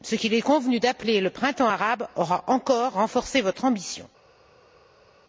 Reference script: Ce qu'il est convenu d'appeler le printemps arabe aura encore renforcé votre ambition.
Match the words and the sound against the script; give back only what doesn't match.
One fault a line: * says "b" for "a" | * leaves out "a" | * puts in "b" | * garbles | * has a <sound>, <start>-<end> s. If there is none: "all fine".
all fine